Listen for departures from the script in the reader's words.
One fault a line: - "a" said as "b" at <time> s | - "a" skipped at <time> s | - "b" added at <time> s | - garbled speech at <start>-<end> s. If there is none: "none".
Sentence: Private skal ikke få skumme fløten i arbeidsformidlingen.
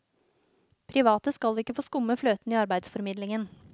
none